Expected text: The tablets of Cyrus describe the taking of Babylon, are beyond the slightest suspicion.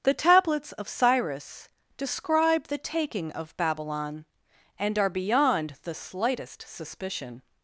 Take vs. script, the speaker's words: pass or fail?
fail